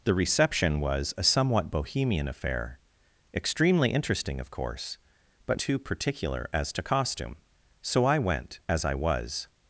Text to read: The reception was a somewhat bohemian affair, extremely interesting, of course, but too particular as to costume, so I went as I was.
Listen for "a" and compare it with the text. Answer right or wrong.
right